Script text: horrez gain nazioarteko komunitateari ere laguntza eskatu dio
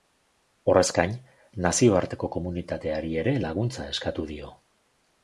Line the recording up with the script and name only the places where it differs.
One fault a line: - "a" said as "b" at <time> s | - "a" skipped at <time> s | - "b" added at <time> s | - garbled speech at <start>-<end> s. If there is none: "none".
none